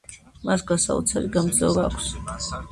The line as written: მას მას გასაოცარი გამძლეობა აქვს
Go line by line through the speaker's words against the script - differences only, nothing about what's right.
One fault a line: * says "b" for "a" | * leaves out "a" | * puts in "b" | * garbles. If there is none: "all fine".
* leaves out "მას"